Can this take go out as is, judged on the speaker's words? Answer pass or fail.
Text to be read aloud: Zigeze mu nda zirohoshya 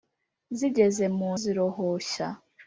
fail